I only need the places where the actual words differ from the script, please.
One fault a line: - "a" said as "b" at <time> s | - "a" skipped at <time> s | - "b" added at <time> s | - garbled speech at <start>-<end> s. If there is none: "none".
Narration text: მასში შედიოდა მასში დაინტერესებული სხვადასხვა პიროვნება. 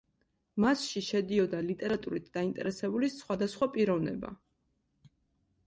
- "მასში" said as "ლიტერატურით" at 1.7 s